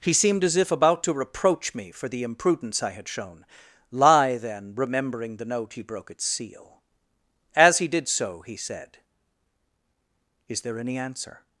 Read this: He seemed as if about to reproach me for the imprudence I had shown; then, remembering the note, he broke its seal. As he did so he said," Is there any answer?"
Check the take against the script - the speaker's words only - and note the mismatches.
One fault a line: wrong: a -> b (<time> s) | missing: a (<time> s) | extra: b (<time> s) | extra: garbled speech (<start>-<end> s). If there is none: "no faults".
extra: lie (3.9 s)